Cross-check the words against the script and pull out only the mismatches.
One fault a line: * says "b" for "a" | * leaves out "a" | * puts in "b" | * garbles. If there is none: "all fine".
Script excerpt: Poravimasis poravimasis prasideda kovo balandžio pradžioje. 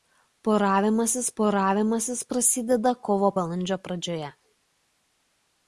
all fine